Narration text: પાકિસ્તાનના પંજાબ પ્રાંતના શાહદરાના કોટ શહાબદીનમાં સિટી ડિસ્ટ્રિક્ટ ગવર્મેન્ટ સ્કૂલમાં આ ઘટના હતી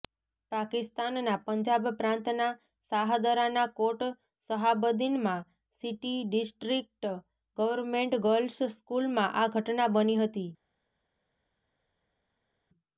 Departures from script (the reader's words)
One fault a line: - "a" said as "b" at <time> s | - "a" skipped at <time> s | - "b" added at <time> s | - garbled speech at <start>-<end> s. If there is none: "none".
- "ગર્લ્સ" added at 8.2 s
- "બની" added at 10.0 s